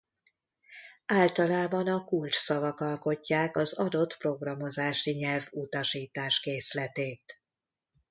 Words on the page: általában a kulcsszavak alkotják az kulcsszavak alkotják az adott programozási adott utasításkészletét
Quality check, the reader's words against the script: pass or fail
fail